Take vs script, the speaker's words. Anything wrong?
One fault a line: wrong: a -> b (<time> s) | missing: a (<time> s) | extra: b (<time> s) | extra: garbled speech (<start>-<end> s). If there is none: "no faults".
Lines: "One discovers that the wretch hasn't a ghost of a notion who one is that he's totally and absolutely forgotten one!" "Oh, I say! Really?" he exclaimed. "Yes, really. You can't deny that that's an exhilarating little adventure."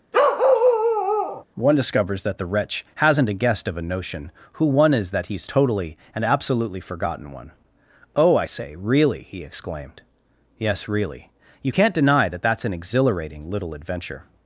wrong: ghost -> guest (3.3 s)